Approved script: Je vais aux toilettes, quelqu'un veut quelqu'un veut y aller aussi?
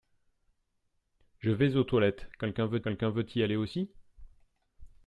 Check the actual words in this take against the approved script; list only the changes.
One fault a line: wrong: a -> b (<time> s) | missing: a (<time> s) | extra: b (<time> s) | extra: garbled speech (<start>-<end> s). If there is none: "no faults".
no faults